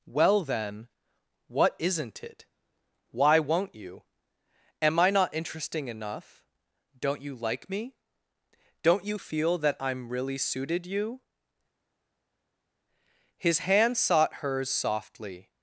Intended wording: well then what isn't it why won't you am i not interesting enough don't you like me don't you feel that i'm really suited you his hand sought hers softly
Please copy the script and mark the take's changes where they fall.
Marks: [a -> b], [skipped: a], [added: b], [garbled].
well then what isn't it why won't you am i not interesting enough don't you like me don't you feel that i'm really suited you his hand sought hers softly